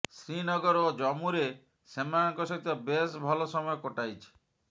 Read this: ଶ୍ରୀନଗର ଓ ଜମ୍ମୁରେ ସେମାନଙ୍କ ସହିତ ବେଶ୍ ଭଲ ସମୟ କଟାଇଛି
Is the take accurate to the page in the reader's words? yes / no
yes